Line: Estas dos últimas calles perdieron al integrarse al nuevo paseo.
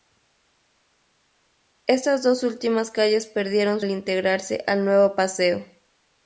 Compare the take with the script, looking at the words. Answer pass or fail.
pass